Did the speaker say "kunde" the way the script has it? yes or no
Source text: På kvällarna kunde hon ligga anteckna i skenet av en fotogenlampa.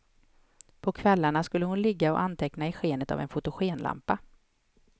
no